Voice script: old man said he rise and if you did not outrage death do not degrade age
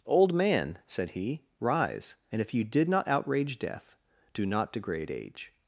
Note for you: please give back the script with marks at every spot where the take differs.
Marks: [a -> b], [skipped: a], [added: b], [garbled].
old man said he rise and if you did not outrage death do not degrade age